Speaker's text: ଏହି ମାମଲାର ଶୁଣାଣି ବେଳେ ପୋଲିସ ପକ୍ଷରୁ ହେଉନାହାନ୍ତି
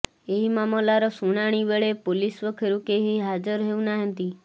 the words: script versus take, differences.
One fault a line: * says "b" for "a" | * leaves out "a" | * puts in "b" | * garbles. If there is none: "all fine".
* puts in "କେହି ହାଜର"